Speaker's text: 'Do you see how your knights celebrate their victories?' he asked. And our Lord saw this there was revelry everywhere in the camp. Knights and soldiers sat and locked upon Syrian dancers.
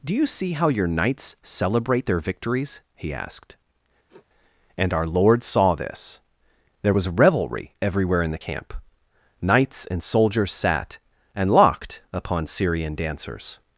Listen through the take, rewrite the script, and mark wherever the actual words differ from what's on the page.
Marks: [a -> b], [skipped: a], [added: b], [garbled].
'Do you see how your knights celebrate their victories?' he asked. And our Lord saw this there was revelry everywhere in the camp. Knights and soldiers sat and locked upon Syrian dancers.